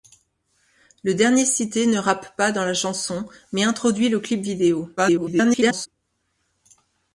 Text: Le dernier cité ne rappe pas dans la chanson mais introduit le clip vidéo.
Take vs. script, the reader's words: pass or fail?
fail